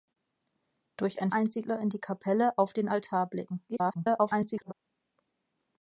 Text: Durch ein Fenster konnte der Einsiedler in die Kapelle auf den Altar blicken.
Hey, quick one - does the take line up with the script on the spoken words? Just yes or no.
no